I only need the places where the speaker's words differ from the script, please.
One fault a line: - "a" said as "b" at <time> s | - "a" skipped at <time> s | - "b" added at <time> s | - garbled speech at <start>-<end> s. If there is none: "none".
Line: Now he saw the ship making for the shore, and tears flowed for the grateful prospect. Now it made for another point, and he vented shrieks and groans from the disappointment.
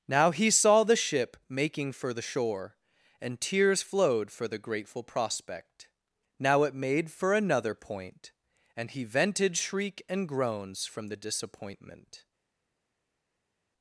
- "shrieks" said as "shriek" at 9.6 s